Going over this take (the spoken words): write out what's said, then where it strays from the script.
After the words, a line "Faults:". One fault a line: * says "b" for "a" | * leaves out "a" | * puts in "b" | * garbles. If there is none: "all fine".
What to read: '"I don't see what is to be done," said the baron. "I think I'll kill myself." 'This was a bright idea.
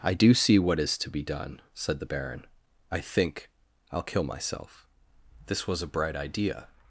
'"I do see what is to be done," said the baron. "I think I'll kill myself." 'This was a bright idea.
Faults:
* says "do" for "don't"